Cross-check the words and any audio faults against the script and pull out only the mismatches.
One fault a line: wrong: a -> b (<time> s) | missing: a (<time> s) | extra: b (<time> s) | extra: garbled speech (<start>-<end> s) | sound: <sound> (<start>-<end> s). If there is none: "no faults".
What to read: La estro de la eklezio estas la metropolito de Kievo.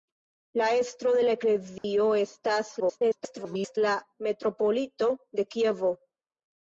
sound: dropout (1.8-1.8 s)
extra: garbled speech (2.8-3.8 s)